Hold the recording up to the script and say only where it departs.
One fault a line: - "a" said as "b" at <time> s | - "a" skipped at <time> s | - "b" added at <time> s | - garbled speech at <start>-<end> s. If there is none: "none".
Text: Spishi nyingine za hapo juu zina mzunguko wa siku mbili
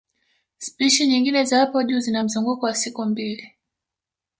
none